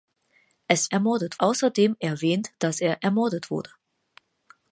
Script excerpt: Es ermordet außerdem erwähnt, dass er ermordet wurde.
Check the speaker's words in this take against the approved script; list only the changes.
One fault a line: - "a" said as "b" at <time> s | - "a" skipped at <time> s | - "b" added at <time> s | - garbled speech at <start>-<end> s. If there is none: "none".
none